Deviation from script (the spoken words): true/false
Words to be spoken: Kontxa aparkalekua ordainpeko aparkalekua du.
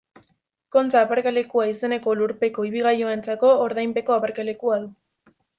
true